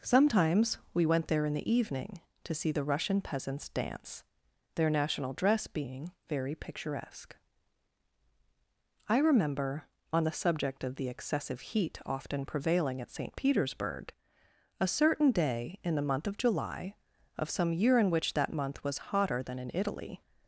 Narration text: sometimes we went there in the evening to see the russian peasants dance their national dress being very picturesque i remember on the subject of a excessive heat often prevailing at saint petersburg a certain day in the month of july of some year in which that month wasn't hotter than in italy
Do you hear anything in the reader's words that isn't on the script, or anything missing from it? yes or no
yes